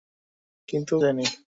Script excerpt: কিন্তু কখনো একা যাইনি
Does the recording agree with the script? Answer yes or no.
no